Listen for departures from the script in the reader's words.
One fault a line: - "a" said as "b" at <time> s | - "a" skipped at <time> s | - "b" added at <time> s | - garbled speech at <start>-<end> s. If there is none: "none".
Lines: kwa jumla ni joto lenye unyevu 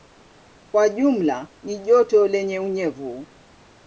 none